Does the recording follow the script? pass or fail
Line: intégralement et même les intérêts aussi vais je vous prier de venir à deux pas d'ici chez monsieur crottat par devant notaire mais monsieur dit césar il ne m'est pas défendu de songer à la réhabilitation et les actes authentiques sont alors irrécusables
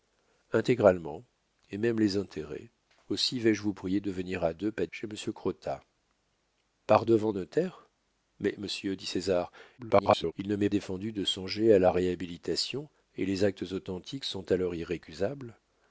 fail